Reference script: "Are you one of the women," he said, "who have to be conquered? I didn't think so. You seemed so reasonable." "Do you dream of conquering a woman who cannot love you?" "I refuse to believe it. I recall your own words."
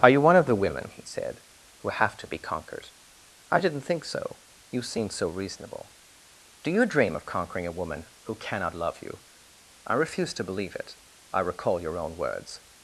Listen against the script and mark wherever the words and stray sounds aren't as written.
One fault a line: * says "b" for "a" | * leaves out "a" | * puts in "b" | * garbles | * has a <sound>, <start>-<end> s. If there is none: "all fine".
all fine